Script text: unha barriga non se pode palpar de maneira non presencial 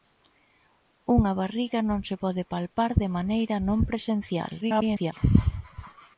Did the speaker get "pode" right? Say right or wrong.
right